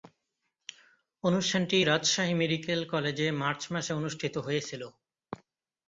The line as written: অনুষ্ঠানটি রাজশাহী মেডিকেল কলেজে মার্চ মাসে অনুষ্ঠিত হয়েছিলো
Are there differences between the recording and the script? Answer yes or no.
no